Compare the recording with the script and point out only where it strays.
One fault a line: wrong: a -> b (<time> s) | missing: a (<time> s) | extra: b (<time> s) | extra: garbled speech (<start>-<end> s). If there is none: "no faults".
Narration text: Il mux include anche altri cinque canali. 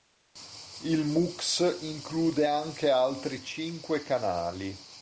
no faults